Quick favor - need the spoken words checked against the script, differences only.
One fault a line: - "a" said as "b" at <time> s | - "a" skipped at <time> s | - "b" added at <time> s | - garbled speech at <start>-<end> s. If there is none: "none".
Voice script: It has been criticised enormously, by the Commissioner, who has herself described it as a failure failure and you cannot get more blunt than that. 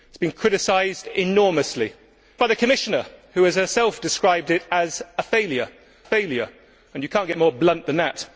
none